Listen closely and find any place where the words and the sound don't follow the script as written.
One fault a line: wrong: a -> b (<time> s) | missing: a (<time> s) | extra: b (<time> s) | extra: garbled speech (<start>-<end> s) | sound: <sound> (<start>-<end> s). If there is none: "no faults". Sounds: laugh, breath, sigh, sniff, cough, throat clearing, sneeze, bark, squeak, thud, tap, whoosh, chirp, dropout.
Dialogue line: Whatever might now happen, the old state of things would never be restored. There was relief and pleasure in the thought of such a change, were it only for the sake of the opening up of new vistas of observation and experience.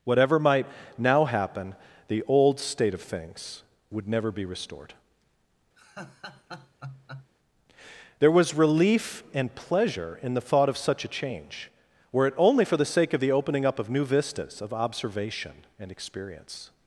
sound: laugh (5.8-7.3 s)